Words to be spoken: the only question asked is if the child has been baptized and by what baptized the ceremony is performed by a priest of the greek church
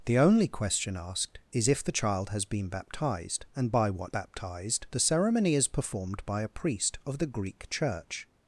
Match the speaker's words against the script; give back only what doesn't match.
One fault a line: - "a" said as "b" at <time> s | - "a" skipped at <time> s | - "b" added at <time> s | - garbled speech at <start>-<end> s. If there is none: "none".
none